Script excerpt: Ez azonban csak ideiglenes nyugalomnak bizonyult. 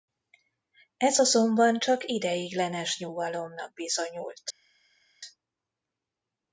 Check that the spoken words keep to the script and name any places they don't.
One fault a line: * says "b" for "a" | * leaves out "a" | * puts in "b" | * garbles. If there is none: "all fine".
all fine